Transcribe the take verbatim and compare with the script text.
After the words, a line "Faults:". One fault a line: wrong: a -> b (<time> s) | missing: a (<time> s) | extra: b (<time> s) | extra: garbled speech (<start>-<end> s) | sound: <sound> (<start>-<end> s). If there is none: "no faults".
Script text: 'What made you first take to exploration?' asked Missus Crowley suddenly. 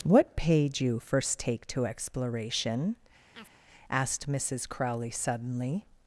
'What paid you first take to exploration?' asked Missus Crowley suddenly.
Faults:
wrong: made -> paid (0.3 s)
sound: chirp (3.3-3.6 s)